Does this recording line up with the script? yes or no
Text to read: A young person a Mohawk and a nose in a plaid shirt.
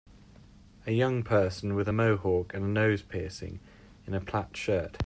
no